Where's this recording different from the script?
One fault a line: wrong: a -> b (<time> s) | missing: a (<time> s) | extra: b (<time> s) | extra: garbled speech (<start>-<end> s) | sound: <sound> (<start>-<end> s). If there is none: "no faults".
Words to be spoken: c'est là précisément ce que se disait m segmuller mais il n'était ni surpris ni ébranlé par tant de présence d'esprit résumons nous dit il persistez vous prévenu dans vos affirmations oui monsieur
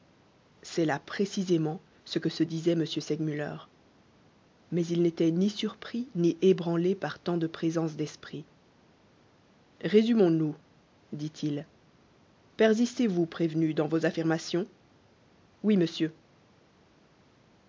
no faults